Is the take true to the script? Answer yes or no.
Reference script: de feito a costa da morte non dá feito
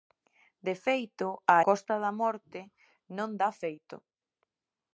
yes